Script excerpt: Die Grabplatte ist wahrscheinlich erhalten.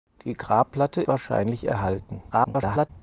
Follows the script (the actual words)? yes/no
no